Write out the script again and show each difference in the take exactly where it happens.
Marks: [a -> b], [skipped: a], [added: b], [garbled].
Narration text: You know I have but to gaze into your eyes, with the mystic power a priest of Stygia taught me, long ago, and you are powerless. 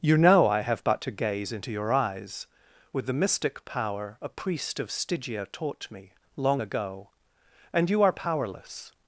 You know I have but to gaze into your eyes, with the mystic power a priest of Stygia taught me, long ago, and you are powerless.